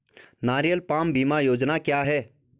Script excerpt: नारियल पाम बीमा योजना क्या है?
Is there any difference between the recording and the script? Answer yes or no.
no